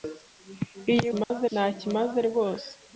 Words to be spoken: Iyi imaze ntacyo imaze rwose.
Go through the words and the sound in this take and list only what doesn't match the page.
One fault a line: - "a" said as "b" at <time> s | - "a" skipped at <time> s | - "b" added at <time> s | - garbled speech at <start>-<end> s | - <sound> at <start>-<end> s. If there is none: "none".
- dropout at 1.2-1.3 s